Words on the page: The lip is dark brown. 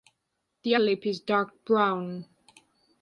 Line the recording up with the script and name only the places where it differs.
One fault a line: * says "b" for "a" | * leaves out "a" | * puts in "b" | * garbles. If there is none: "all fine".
all fine